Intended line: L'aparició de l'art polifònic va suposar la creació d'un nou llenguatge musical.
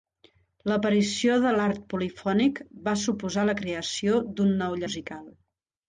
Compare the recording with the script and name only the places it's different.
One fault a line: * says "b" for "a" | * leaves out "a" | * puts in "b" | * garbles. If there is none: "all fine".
* leaves out "llenguatge"